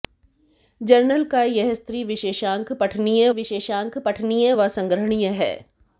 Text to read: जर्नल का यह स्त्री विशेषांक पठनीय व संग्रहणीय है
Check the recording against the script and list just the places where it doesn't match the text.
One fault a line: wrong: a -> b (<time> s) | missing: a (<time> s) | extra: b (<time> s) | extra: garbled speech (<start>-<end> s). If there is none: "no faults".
extra: विशेषांक पठनीय (3.3 s)